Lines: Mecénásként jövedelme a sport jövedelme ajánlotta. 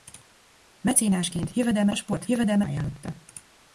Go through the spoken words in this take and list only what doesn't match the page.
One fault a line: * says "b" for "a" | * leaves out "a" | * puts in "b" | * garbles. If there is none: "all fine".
all fine